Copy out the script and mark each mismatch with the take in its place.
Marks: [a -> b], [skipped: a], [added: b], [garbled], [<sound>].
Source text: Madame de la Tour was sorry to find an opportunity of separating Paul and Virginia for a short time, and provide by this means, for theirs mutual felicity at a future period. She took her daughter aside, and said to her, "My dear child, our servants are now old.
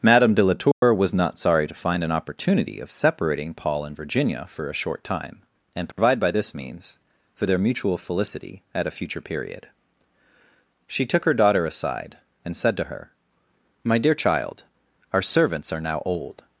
Madame de la Tour [dropout] was [added: not] sorry to find an opportunity of separating Paul and Virginia for a short time, and provide [dropout] by this means, for [theirs -> their] mutual felicity at a future period. She took her daughter aside, and said to her, "My dear child, our servants are now old.